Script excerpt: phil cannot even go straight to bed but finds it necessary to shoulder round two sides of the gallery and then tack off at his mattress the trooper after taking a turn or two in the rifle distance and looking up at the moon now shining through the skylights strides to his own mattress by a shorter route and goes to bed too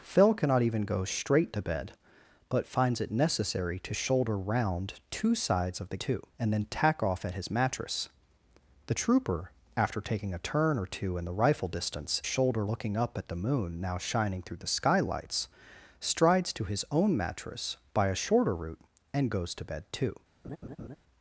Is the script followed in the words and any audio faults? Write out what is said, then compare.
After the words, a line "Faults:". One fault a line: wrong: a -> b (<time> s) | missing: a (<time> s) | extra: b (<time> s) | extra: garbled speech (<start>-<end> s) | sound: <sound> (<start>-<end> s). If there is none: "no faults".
phil cannot even go straight to bed but finds it necessary to shoulder round two sides of the too and then tack off at his mattress the trooper after taking a turn or two in the rifle distance shoulder looking up at the moon now shining through the skylights strides to his own mattress by a shorter route and goes to bed too
Faults:
wrong: gallery -> too (6.0 s)
wrong: and -> shoulder (12.2 s)
sound: laugh (20.4-21.0 s)